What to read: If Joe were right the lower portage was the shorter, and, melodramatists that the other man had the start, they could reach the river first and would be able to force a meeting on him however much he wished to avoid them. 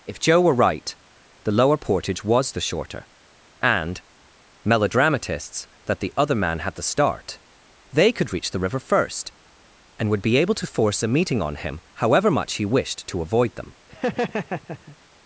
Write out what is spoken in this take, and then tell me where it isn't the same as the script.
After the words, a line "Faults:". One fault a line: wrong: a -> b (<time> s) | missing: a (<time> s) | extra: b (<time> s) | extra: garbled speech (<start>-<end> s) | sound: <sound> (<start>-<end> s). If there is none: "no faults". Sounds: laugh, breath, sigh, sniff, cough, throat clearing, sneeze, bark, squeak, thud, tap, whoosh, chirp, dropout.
If Joe were right the lower portage was the shorter, and, melodramatists that the other man had the start, they could reach the river first and would be able to force a meeting on him however much he wished to avoid them.
Faults:
sound: laugh (13.9-15.0 s)